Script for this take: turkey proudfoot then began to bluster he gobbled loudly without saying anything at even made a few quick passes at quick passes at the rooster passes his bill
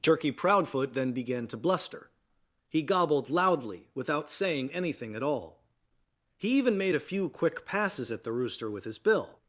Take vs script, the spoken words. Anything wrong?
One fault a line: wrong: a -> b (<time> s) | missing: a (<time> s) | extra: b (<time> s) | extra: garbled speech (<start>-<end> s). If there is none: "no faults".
extra: all he (5.2 s)
missing: quick passes at (8.2 s)
wrong: passes -> with (8.7 s)